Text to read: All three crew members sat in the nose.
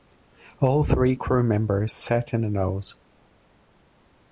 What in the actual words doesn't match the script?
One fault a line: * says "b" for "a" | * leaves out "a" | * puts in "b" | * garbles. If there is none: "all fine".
all fine